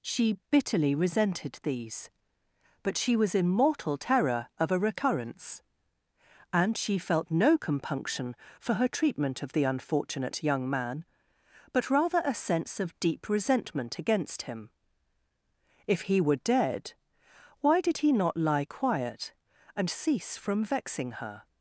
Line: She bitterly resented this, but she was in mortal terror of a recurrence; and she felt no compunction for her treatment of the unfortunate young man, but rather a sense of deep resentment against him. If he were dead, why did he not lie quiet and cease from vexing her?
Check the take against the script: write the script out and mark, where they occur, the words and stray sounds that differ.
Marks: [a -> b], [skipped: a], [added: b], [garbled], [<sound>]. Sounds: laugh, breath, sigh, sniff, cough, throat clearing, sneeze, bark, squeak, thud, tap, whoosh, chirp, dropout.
She bitterly resented [this, -> these] but she was in mortal terror of a recurrence; and she felt no compunction for her treatment of the unfortunate young man, but rather a sense of deep resentment against him. If he were dead, why did he not lie quiet and cease from vexing her?